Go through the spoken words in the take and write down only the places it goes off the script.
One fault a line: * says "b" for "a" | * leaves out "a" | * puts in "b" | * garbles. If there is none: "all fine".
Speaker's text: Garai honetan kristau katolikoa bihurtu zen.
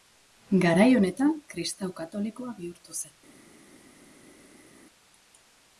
all fine